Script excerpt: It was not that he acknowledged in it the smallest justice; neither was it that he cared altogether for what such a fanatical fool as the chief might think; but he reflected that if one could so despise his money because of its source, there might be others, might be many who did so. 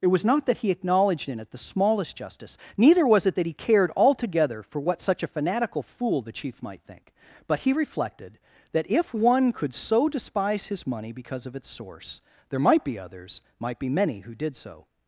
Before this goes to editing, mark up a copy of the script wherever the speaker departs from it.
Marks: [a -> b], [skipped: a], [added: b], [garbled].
It was not that he acknowledged in it the smallest justice; neither was it that he cared altogether for what such a fanatical fool [skipped: as] the chief might think; but he reflected that if one could so despise his money because of its source, there might be others, might be many who did so.